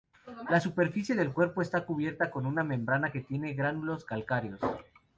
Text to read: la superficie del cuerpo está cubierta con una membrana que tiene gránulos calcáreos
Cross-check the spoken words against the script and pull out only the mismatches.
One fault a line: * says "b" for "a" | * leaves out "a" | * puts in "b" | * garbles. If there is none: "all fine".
all fine